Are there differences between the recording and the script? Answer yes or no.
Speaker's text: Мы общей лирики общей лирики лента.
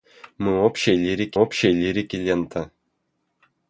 no